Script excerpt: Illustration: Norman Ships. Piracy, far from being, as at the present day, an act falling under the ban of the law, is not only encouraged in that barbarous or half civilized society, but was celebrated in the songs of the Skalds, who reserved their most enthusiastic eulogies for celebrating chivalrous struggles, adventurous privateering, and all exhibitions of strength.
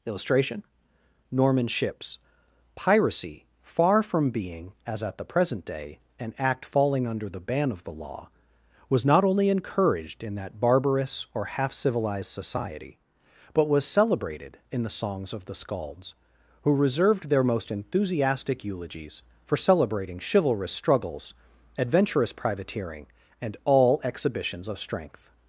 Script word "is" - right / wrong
wrong